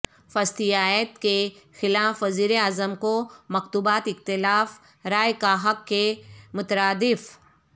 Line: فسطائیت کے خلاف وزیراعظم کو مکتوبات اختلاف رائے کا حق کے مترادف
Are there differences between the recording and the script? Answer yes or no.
no